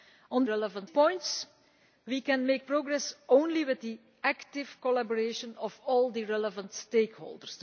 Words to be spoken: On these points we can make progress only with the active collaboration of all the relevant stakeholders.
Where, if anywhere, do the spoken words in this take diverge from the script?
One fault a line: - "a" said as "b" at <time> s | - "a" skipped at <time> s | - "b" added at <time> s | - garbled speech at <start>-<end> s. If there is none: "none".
- "these" said as "relevant" at 0.4 s